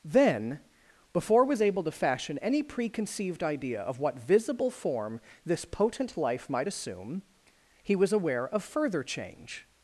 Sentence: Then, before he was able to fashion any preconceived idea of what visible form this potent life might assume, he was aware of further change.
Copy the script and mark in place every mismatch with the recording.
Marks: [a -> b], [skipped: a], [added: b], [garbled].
Then, before [skipped: he] was able to fashion any preconceived idea of what visible form this potent life might assume, he was aware of further change.